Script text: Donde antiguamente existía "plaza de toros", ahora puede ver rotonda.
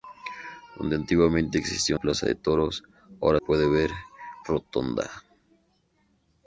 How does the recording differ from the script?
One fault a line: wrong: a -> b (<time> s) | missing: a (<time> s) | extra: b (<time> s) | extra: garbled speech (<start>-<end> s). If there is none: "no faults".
no faults